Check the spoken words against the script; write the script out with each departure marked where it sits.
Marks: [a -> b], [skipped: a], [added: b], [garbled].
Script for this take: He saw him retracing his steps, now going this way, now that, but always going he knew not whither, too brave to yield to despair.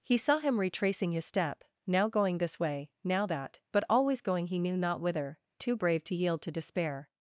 He saw him retracing his [steps, -> step] now going this way, now that, but always going he knew not whither, too brave to yield to despair.